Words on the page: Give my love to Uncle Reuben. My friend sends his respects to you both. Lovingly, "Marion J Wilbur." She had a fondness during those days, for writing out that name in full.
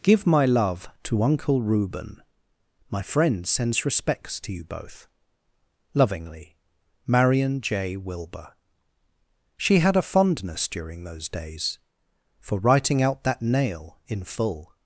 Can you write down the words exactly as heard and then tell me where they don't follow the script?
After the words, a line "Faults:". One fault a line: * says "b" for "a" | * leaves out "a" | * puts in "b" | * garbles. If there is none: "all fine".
Give my love to Uncle Reuben. My friend sends respects to you both. Lovingly, "Marion J Wilbur." She had a fondness during those days, for writing out that nail in full.
Faults:
* leaves out "his"
* says "nail" for "name"